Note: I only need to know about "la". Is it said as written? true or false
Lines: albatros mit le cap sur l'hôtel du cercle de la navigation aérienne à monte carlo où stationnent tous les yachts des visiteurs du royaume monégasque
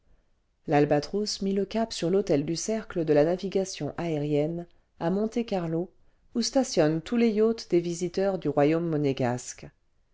true